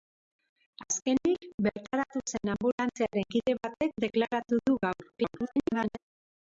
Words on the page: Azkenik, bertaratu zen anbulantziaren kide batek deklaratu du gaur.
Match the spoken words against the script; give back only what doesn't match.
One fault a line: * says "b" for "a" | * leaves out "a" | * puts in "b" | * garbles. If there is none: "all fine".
* garbles